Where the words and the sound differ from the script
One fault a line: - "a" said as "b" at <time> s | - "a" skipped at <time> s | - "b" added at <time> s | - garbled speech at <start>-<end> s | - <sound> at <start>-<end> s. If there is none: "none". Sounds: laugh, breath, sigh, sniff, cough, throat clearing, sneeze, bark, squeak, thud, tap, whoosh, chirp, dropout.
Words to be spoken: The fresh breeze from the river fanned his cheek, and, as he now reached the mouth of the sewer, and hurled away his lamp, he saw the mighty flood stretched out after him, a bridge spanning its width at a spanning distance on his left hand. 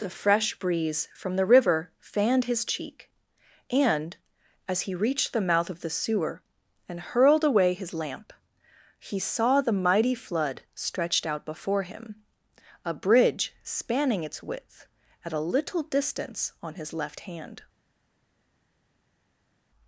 - "now" skipped at 4.9 s
- "after" said as "before" at 11.5 s
- "spanning" said as "little" at 15.4 s